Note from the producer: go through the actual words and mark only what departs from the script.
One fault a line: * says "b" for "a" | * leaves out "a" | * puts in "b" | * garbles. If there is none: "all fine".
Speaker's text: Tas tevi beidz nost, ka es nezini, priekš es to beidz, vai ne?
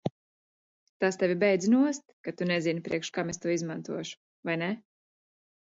* says "tu" for "es"
* puts in "kam"
* says "izmantošu" for "beidz"